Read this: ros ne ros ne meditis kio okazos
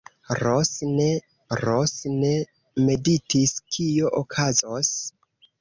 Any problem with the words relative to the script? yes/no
no